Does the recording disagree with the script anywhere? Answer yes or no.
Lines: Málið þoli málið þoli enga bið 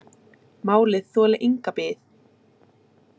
yes